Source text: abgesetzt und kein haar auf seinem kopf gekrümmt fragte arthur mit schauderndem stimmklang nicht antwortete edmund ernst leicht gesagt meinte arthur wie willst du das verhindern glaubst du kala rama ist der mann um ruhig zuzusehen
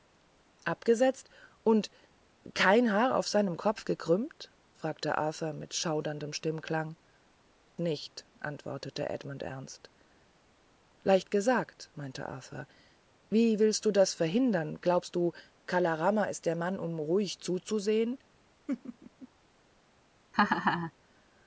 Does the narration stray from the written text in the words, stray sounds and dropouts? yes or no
yes